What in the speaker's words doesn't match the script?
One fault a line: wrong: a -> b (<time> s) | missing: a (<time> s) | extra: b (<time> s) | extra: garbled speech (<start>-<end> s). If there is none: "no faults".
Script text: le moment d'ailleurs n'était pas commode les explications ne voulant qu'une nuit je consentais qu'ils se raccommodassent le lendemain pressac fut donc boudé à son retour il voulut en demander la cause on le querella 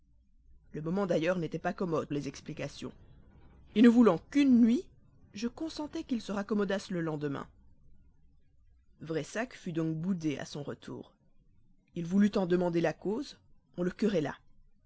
no faults